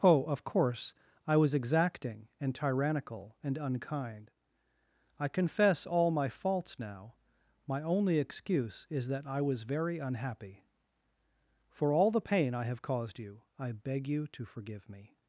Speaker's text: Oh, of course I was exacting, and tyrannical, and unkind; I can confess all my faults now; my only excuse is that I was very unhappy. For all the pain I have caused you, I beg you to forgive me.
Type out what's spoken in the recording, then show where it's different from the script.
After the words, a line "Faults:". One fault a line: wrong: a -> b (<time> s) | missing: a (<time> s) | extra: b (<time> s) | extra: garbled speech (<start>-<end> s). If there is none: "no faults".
Oh, of course I was exacting, and tyrannical, and unkind; I confess all my faults now; my only excuse is that I was very unhappy. For all the pain I have caused you, I beg you to forgive me.
Faults:
missing: can (5.3 s)